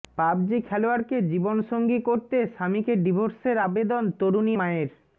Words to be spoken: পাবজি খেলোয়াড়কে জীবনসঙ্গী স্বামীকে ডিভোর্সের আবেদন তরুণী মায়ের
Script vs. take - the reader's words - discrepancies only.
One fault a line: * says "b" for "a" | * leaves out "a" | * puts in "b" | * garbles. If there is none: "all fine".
* puts in "করতে"